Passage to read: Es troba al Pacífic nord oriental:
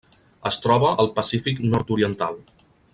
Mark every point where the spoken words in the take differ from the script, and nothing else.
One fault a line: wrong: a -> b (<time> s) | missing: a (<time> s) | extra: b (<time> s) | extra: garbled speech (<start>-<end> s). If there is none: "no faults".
no faults